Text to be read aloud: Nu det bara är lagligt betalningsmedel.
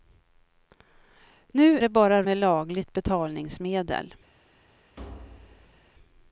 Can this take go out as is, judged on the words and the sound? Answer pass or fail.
fail